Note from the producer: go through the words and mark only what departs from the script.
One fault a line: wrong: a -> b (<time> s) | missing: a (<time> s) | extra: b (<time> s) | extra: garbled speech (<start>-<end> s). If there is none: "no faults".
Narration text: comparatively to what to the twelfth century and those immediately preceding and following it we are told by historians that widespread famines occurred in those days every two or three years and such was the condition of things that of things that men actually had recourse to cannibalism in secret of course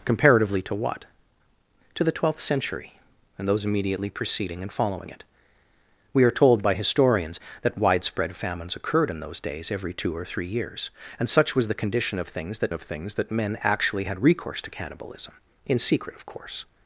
no faults